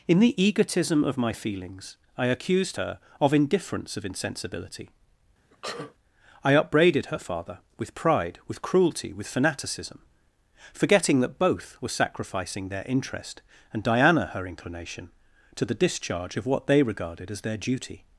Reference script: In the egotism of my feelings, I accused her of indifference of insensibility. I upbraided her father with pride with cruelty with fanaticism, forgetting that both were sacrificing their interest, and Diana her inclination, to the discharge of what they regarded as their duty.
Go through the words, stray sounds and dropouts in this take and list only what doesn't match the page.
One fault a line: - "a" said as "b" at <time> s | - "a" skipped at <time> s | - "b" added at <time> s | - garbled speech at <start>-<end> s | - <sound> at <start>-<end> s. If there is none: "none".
- sneeze at 5.5-5.9 s